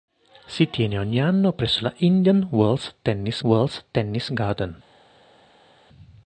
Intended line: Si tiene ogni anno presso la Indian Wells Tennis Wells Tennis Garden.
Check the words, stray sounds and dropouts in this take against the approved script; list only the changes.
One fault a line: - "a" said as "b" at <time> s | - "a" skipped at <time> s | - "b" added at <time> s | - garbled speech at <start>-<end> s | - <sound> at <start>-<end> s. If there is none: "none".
none